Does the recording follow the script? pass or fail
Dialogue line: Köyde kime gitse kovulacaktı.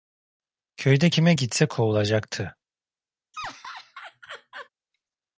pass